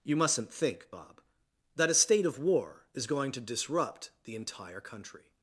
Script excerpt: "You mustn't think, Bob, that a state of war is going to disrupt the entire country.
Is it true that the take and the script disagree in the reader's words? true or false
false